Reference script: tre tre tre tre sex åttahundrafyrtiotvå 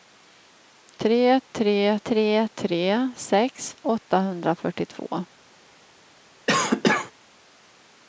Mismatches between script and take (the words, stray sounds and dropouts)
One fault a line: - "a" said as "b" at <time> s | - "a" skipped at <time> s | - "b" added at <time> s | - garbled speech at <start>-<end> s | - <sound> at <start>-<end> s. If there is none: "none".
- cough at 6.5-7.1 s